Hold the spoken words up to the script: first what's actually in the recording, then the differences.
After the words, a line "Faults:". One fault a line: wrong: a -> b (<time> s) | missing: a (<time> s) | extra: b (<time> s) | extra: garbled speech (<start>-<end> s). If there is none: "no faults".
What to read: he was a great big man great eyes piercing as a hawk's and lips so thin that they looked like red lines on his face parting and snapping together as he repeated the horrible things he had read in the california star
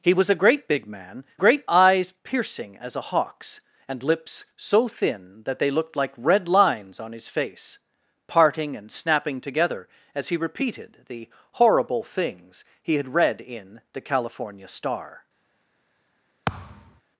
he was a great big man great eyes piercing as a hawk's and lips so thin that they looked like red lines on his face parting and snapping together as he repeated the horrible things he had read in the california star
Faults:
no faults